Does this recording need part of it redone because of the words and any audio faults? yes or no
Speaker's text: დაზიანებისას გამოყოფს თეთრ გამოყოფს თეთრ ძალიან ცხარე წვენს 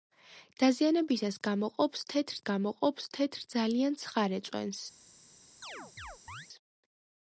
yes